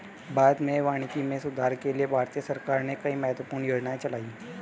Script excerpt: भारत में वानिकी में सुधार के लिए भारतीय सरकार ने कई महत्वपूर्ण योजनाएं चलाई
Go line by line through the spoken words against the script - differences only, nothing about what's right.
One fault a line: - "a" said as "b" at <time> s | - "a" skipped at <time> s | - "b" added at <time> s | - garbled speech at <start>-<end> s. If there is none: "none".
none